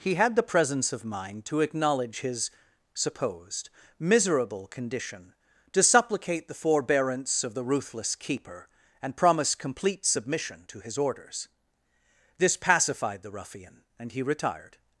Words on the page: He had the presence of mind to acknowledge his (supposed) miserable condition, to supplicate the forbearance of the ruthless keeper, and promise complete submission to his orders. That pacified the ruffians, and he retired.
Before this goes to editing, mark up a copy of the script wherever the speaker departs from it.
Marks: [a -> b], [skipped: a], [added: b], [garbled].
He had the presence of mind to acknowledge his (supposed) miserable condition, to supplicate the forbearance of the ruthless keeper, and promise complete submission to his orders. [That -> This] pacified the [ruffians, -> ruffian] and he retired.